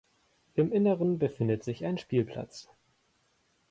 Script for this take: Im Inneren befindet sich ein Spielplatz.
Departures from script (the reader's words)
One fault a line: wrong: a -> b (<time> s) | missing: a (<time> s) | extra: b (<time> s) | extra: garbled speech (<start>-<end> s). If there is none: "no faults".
no faults